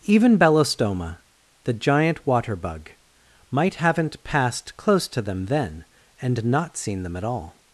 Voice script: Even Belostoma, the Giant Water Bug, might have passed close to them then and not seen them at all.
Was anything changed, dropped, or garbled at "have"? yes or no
yes